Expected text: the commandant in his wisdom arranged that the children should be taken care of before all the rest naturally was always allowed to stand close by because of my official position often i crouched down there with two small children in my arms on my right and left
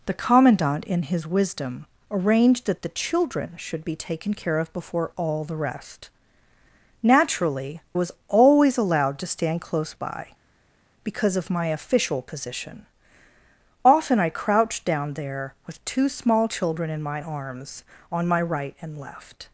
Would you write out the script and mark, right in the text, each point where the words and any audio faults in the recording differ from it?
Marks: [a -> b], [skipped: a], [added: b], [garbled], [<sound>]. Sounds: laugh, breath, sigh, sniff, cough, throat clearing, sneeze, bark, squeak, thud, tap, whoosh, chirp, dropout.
the commandant in his wisdom arranged that the children should be taken care of before all the rest naturally was always allowed to stand close by because of my official position often i crouched down there with two small children in my arms on my right and left